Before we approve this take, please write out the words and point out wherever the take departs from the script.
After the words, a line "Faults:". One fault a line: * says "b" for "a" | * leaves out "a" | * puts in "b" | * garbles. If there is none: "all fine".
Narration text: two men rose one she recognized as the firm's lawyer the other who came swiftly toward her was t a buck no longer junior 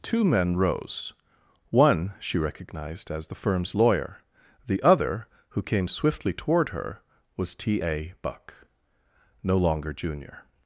two men rose one she recognized as the firm's lawyer the other who came swiftly toward her was t a buck no longer junior
Faults:
all fine